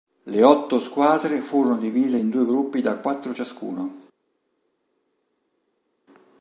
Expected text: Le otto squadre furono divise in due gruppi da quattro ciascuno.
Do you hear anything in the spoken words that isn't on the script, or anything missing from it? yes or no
no